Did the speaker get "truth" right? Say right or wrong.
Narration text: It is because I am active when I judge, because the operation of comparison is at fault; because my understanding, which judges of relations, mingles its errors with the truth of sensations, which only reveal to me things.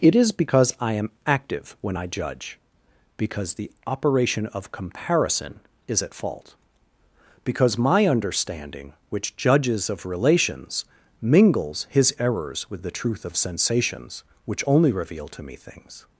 right